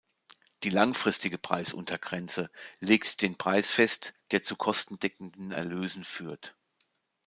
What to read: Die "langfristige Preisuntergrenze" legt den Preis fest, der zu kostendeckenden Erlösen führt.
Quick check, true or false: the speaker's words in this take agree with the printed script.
true